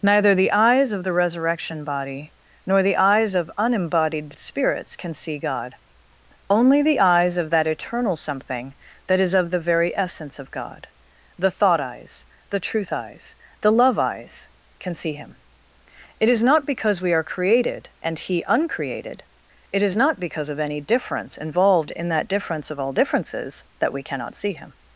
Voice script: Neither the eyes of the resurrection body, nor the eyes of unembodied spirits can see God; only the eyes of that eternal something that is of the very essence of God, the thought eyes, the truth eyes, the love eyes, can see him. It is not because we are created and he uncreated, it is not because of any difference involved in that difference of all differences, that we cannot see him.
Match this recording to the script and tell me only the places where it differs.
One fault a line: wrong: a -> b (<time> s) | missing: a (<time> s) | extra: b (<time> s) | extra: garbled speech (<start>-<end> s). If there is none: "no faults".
no faults